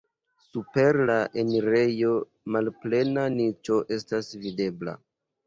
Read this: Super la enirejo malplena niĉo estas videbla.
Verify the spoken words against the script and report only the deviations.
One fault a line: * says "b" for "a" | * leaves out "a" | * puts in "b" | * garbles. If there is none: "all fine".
all fine